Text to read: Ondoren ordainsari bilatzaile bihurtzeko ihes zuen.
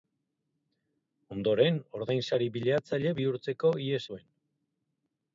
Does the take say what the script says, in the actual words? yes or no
yes